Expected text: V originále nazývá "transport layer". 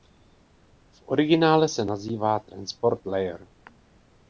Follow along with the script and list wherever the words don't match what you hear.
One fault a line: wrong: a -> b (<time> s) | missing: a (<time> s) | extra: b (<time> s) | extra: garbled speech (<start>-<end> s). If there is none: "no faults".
extra: se (1.7 s)